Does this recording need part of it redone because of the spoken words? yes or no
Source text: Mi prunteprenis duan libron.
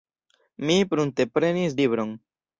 yes